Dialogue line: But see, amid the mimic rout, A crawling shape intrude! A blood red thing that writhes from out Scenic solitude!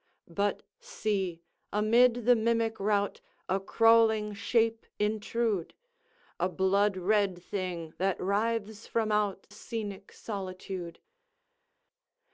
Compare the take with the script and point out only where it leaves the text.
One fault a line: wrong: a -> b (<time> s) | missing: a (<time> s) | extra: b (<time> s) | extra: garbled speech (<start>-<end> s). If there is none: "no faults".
no faults